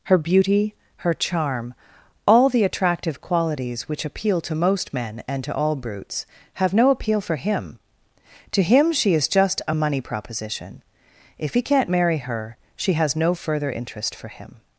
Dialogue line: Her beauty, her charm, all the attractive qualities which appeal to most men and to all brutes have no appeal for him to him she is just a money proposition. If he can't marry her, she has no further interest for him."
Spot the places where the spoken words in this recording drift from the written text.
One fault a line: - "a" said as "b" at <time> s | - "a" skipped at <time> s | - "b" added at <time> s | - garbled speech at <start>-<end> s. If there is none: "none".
none